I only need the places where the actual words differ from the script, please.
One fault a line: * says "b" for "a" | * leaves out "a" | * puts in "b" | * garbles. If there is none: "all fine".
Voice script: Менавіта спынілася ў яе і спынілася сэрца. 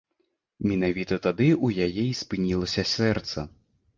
* says "тады" for "спынілася"